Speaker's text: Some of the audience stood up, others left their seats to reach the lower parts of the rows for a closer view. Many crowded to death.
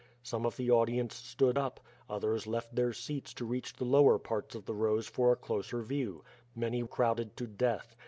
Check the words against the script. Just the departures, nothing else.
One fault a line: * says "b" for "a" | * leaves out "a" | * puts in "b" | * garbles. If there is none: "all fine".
all fine